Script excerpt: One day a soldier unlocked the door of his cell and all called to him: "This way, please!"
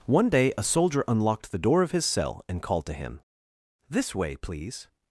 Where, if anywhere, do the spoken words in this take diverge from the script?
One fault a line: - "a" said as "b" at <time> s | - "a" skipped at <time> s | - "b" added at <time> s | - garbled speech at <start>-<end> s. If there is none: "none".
- "all" skipped at 2.6 s